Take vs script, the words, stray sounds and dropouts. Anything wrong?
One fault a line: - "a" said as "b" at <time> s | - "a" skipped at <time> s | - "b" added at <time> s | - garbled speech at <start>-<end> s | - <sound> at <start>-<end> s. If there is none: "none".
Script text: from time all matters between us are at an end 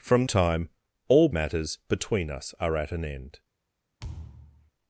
- thud at 4.0-4.7 s